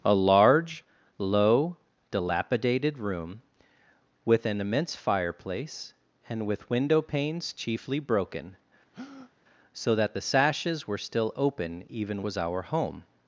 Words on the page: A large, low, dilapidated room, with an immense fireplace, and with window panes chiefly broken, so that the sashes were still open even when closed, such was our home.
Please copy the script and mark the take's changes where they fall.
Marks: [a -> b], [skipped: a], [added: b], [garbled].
A large, low, dilapidated room, with an immense fireplace, and with window panes chiefly broken, so that the sashes were still open even [skipped: when closed, such] was our home.